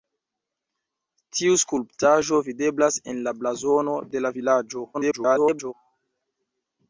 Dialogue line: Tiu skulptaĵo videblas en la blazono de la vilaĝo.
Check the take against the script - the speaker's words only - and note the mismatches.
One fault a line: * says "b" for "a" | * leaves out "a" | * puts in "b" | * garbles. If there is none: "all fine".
* garbles